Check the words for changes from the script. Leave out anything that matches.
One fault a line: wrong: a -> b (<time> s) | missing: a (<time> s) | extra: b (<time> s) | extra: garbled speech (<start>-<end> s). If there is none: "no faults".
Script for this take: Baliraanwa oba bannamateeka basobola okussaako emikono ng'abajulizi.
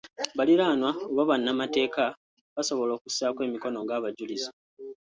no faults